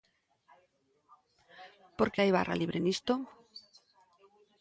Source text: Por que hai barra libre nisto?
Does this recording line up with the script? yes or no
yes